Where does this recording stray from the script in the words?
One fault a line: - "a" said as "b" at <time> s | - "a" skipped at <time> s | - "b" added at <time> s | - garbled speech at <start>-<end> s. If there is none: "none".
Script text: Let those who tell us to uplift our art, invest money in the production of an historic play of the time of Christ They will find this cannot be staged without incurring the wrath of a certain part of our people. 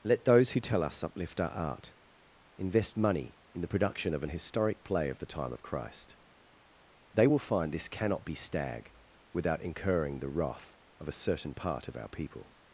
- "to" skipped at 1.0 s
- "staged" said as "stag" at 8.3 s